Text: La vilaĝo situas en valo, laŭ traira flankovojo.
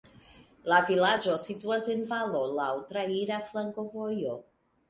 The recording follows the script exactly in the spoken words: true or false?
true